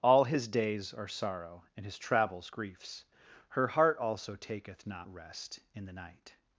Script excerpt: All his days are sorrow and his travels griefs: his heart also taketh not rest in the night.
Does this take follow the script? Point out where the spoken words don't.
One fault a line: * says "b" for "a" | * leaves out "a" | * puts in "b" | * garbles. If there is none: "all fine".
* says "her" for "his"